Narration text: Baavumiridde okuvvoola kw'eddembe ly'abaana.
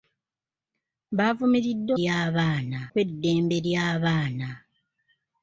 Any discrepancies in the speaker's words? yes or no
yes